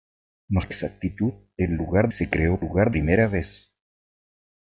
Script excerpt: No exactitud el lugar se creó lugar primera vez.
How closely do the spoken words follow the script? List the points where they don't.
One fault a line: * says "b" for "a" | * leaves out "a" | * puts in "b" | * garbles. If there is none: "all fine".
all fine